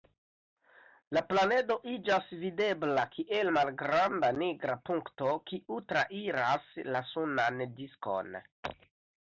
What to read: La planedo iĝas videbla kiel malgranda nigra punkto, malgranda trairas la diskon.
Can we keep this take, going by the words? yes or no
no